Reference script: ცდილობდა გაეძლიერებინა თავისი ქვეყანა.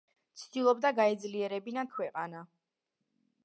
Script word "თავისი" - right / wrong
wrong